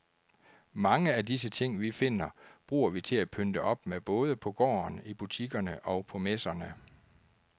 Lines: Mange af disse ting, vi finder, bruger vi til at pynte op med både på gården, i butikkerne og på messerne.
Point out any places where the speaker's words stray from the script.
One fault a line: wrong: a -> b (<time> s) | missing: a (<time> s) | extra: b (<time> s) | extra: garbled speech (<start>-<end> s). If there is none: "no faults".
no faults